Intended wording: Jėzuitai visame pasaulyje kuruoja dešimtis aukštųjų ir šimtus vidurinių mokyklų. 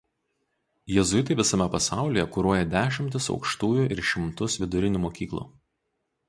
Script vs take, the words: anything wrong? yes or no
no